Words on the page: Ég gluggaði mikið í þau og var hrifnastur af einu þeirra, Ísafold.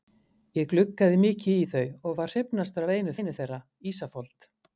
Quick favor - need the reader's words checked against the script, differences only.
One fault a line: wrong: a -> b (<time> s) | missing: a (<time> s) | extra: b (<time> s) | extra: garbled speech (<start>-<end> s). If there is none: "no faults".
extra: einu (3.2 s)